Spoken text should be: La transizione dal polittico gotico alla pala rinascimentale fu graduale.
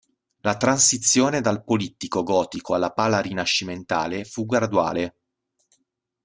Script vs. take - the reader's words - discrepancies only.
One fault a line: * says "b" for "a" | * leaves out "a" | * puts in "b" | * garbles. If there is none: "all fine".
all fine